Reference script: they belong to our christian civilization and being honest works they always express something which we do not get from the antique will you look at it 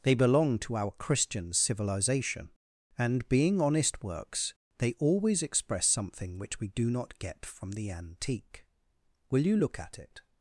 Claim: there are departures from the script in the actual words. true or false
false